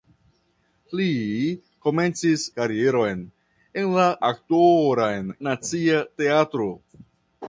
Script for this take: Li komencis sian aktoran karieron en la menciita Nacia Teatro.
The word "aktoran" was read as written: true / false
false